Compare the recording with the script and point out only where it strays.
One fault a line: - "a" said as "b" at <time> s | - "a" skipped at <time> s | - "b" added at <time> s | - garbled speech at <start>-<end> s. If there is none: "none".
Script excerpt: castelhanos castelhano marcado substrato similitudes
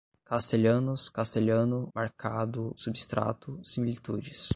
none